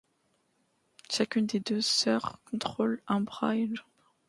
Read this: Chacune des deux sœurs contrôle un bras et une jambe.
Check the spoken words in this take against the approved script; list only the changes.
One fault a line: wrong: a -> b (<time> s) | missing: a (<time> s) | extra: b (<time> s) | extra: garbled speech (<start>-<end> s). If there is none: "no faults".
no faults